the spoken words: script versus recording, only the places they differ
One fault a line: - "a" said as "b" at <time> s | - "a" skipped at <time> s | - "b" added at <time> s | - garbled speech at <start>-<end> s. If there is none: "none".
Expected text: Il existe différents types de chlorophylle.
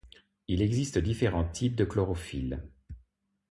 none